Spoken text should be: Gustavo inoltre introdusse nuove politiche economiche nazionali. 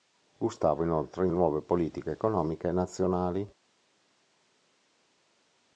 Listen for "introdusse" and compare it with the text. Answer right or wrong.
wrong